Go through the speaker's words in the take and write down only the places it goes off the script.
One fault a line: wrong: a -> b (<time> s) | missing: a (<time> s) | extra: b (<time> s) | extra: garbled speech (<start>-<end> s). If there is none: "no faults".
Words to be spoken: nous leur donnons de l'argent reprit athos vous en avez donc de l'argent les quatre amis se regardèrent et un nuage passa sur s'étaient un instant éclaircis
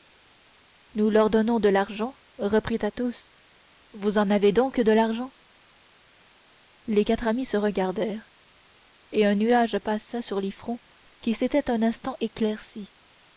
extra: les fronts qui (10.4 s)